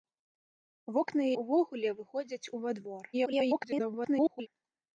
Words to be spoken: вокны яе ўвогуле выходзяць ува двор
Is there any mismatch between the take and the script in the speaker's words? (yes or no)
yes